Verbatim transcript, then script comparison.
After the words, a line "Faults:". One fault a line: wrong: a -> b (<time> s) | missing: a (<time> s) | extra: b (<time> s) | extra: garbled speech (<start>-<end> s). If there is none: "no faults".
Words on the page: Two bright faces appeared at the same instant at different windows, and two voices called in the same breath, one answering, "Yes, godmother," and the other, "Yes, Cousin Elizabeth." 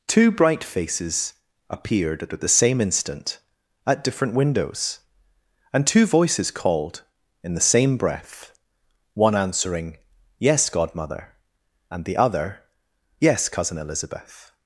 Two bright faces appeared at at the same instant at different windows, and two voices called in the same breath, one answering, "Yes, godmother," and the other, "Yes, Cousin Elizabeth."
Faults:
extra: at (2.3 s)